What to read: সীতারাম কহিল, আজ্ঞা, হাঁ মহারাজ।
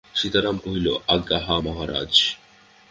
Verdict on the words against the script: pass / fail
pass